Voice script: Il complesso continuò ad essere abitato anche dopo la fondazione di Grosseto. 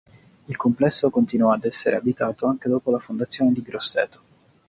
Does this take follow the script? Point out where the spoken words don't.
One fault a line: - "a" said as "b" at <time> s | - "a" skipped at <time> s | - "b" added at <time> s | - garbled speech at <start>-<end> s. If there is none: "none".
none